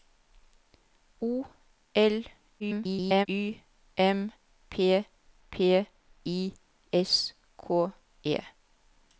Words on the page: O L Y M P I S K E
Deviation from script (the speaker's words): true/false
true